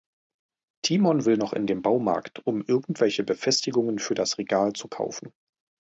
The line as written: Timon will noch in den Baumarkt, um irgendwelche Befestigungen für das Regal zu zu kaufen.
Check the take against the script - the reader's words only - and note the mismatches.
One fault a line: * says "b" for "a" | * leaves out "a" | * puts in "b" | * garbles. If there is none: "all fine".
* leaves out "zu"